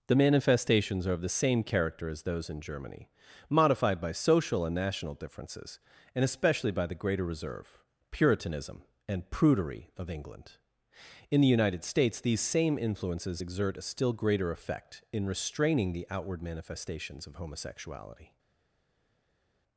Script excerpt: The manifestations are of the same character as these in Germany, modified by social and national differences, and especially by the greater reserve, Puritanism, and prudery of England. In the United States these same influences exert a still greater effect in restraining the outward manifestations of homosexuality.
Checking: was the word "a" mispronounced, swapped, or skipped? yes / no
no